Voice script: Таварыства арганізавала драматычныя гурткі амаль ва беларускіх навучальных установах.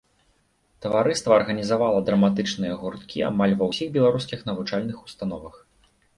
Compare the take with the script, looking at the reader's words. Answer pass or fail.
fail